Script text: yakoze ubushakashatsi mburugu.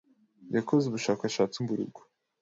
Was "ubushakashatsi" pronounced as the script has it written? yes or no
yes